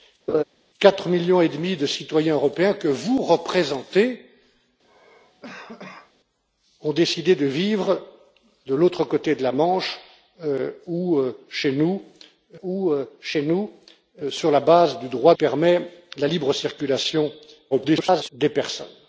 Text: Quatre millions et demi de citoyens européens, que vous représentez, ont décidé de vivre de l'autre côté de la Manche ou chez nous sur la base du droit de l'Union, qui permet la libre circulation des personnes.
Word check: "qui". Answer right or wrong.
wrong